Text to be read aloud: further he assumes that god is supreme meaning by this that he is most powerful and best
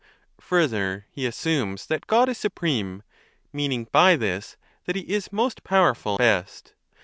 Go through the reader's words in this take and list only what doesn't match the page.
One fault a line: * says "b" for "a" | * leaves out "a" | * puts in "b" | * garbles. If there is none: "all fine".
* leaves out "and"